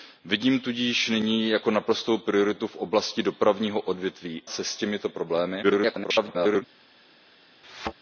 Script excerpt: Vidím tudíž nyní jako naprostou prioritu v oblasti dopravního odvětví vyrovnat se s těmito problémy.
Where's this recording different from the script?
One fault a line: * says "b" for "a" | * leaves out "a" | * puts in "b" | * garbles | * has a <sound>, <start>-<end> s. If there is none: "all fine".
* leaves out "vyrovnat"
* garbles
* has a thud, 7.6-7.9 s